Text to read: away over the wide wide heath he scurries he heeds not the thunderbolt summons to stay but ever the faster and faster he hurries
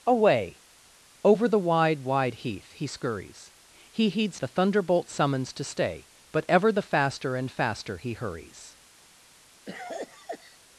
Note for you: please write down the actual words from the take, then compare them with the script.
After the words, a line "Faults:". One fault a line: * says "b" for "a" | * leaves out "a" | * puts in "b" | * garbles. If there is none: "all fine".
away over the wide wide heath he scurries he heeds the thunderbolt summons to stay but ever the faster and faster he hurries
Faults:
* leaves out "not"